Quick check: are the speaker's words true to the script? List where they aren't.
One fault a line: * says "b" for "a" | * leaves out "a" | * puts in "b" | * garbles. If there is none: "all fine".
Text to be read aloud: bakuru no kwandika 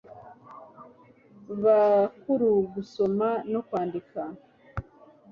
* puts in "gusoma"